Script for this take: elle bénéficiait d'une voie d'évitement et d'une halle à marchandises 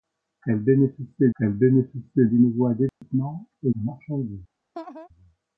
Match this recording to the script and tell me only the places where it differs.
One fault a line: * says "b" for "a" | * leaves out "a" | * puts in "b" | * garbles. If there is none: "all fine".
* puts in "elle bénéficiait"
* leaves out "d'une halle à"